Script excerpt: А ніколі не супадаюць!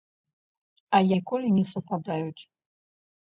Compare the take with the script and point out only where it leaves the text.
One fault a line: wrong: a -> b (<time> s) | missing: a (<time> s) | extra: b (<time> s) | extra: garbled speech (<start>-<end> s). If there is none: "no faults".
no faults